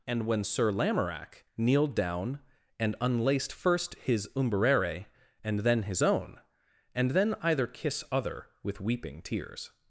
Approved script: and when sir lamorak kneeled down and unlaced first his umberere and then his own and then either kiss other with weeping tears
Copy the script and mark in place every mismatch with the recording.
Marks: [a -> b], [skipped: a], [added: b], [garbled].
and when sir lamorak kneeled down and unlaced first his umberere and then his own and then either kiss other with weeping tears